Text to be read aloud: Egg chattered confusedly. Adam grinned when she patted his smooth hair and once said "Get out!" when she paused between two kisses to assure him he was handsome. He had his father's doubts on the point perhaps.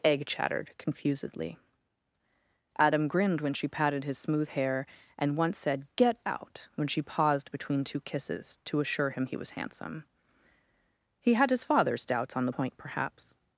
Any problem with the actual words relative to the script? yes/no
no